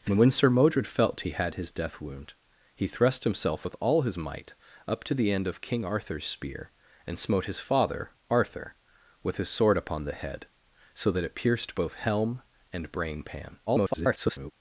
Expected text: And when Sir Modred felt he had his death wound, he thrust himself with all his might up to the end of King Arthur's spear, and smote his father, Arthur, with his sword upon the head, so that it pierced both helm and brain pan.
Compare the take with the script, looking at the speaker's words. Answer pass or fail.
fail